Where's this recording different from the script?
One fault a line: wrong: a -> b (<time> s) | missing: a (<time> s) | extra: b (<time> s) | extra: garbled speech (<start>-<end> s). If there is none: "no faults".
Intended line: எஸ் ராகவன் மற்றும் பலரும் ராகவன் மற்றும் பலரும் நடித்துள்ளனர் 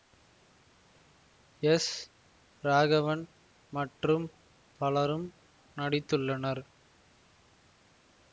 missing: ராகவன் மற்றும் பலரும் (5.3 s)